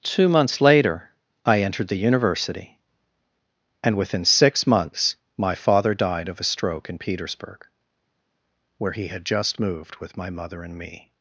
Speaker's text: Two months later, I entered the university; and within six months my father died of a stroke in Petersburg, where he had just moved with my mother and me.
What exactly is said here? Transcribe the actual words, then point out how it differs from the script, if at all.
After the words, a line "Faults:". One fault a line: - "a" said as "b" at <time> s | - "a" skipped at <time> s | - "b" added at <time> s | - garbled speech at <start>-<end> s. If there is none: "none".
Two months later, I entered the university; and within six months my father died of a stroke in Petersburg, where he had just moved with my mother and me.
Faults:
none